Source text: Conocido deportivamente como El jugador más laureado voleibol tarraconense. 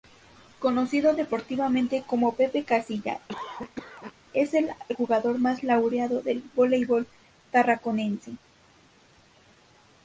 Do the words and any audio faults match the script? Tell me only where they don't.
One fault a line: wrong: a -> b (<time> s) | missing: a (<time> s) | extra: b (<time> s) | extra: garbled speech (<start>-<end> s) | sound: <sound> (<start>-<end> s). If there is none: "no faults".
extra: Pepe Casilla es (2.3 s)
sound: cough (3.3-4.1 s)
extra: del (6.2 s)